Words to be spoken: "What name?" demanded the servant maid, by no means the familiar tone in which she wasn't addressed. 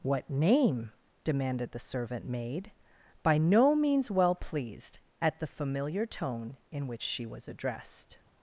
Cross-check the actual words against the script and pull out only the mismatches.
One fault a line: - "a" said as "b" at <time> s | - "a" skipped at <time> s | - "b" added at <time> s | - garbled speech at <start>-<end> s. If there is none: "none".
- "well pleased at" added at 4.1 s
- "wasn't" said as "was" at 7.2 s